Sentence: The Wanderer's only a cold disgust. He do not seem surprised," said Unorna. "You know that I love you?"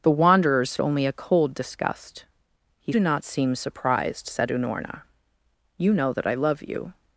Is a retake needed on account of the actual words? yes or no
no